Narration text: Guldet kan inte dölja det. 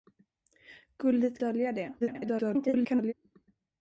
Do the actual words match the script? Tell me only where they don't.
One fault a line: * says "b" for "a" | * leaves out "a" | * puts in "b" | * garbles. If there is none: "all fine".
* leaves out "kan inte"
* garbles